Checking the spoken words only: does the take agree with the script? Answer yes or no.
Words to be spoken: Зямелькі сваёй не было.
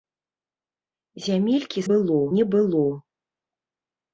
no